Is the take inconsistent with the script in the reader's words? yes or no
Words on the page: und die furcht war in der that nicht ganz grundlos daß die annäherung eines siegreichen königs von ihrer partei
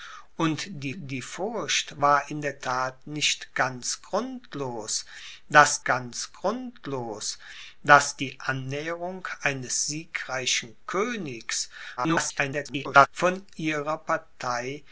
yes